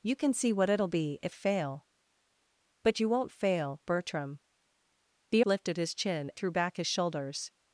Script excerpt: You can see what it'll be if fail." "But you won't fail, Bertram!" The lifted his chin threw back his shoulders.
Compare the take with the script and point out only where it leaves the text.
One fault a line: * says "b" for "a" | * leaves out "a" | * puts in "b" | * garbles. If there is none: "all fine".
all fine